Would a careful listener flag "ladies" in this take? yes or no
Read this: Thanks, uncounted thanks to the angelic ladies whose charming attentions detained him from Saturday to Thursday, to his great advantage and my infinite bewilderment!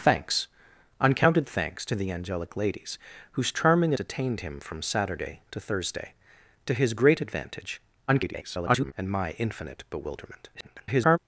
no